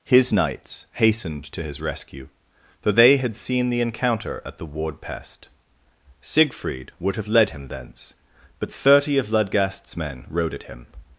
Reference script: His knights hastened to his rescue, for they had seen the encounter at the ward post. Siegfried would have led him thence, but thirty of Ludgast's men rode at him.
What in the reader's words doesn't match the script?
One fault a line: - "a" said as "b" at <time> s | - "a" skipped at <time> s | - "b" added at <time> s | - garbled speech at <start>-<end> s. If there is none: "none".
- "post" said as "pest" at 5.0 s